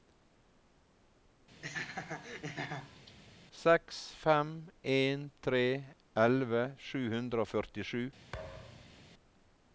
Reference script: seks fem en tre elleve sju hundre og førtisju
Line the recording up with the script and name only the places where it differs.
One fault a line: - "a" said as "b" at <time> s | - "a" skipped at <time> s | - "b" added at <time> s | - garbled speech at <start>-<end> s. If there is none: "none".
none